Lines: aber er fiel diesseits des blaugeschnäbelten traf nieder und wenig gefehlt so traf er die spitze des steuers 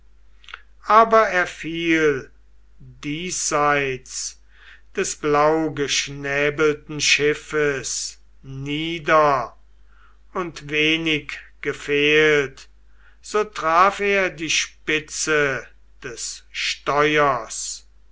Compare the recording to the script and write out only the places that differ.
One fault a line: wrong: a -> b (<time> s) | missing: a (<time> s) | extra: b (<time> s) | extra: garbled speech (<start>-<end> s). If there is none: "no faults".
wrong: traf -> schiffes (7.0 s)